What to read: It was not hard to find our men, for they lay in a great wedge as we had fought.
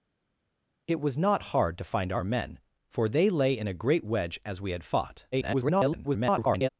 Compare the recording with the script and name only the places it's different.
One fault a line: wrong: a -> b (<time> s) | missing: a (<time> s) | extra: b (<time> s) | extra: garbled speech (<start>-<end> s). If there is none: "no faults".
extra: garbled speech (5.3-6.7 s)